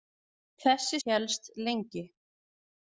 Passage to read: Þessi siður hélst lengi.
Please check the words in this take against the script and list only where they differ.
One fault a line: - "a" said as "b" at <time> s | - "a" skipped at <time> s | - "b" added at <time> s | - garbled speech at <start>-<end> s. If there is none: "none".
- "siður" skipped at 1.0 s